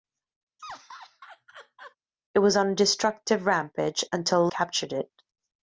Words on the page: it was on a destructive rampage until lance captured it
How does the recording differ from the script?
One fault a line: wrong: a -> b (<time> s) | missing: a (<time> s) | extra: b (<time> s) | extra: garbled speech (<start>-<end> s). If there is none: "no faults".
missing: lance (4.5 s)